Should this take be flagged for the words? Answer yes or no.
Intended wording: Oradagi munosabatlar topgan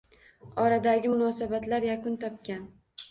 yes